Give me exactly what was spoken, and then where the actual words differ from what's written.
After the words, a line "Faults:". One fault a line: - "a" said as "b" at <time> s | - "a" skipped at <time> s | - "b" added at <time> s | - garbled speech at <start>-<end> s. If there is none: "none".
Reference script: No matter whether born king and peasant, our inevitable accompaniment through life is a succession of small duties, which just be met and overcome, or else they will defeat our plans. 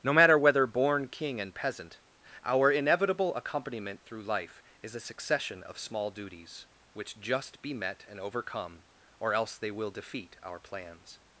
No matter whether born king and peasant, our inevitable accompaniment through life is a succession of small duties, which just be met and overcome, or else they will defeat our plans.
Faults:
none